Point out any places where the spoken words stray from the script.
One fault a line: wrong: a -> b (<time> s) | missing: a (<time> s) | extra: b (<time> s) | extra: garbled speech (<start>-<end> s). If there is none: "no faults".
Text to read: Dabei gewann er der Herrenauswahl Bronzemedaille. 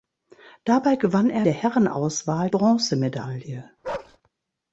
no faults